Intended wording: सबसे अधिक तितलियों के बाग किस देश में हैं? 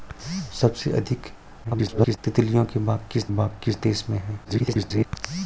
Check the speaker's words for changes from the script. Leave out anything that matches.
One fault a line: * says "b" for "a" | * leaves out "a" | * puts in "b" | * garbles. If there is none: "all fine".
* garbles
* puts in "बाग किस"
* garbles